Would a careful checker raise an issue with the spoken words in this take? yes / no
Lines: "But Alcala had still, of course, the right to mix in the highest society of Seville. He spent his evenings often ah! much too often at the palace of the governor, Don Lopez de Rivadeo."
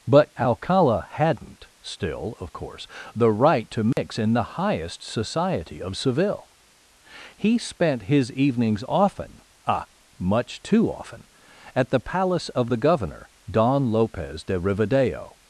yes